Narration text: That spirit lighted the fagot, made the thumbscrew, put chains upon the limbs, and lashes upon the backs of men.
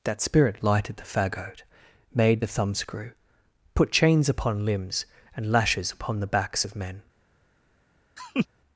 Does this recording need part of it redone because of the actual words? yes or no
yes